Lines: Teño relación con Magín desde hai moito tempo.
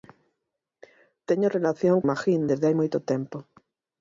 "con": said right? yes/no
no